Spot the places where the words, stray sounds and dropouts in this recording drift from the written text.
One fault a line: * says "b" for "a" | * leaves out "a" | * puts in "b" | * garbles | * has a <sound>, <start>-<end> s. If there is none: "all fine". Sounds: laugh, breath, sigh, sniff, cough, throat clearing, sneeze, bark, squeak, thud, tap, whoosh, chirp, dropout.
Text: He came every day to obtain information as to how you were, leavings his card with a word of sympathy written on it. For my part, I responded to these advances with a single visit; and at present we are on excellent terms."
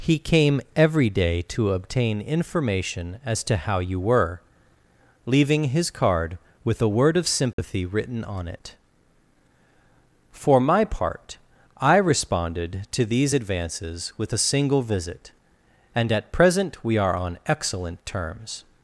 * says "leaving" for "leavings"
* has a dropout, 7.5-7.6 s